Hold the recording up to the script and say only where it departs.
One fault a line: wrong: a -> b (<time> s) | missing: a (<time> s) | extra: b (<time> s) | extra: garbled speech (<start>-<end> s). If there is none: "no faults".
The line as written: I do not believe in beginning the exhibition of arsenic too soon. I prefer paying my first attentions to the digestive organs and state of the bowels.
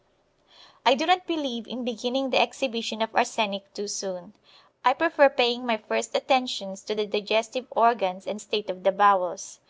no faults